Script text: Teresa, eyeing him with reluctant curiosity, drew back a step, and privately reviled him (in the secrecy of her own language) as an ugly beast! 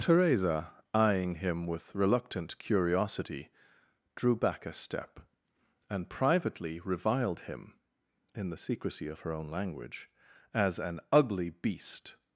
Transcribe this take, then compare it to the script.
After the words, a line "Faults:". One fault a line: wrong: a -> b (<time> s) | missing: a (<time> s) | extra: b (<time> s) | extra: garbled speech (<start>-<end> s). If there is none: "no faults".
Teresa, eyeing him with reluctant curiosity, drew back a step, and privately reviled him (in the secrecy of her own language) as an ugly beast!
Faults:
no faults